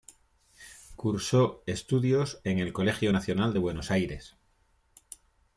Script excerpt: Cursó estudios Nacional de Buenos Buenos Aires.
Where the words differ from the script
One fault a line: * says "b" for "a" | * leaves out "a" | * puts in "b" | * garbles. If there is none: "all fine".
* puts in "en el Colegio"
* leaves out "Buenos"